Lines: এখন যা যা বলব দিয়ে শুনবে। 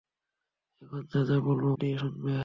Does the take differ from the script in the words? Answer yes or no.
no